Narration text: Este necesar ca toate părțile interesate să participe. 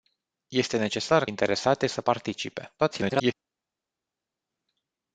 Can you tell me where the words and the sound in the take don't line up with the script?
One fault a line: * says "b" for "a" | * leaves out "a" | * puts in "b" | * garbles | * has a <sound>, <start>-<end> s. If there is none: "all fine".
* leaves out "ca toate părțile"
* garbles